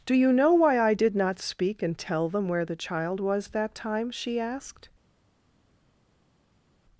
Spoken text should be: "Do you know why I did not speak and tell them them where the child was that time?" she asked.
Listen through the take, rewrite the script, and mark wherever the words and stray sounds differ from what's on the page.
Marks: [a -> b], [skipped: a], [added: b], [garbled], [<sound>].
"Do you know why I did not speak and tell them [skipped: them] where the child was that time?" she asked.